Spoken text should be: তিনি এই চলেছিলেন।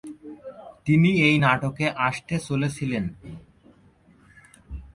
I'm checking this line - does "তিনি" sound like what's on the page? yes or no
yes